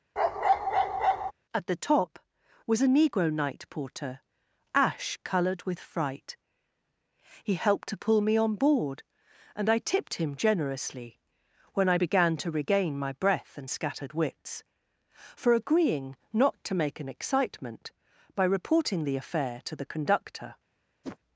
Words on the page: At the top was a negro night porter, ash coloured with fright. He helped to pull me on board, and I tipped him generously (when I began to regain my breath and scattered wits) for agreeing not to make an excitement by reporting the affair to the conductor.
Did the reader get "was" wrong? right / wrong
right